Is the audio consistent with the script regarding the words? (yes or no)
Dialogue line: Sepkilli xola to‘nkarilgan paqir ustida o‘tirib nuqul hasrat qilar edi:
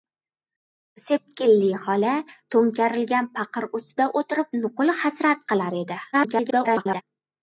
no